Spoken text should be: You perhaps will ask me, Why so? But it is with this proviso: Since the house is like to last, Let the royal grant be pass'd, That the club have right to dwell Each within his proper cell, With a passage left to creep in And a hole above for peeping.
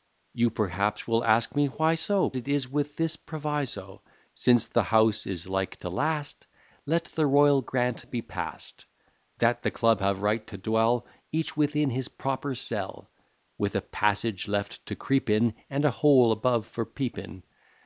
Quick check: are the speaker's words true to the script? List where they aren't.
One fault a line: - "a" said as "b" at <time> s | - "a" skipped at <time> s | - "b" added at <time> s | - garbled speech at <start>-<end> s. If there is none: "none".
- "But" skipped at 2.3 s